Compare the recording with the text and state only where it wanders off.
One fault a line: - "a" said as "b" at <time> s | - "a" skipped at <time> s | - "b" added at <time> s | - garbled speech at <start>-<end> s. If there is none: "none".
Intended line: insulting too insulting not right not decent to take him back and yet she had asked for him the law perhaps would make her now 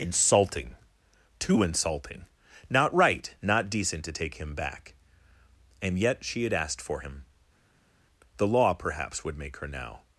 none